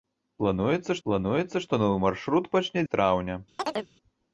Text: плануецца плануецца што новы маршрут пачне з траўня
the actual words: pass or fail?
pass